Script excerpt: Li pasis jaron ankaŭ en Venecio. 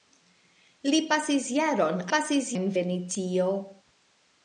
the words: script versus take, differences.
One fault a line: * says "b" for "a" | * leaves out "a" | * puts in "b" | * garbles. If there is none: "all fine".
* says "pasis" for "ankaŭ"